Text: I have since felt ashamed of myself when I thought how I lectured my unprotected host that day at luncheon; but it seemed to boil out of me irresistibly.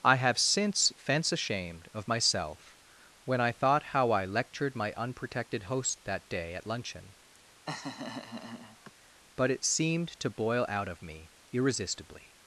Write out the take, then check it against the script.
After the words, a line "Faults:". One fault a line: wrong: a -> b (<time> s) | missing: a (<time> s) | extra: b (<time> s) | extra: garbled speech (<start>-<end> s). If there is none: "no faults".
I have since fence ashamed of myself when I thought how I lectured my unprotected host that day at luncheon; but it seemed to boil out of me irresistibly.
Faults:
wrong: felt -> fence (1.0 s)